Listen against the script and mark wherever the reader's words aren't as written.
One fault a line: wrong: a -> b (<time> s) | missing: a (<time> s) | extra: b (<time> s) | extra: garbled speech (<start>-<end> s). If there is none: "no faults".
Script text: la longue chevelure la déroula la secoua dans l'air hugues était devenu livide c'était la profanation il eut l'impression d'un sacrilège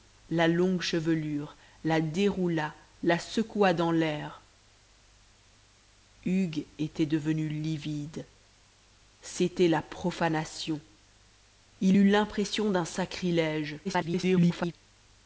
extra: garbled speech (13.8-14.7 s)